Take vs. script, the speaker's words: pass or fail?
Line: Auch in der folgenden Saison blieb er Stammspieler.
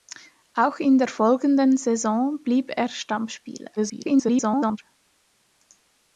fail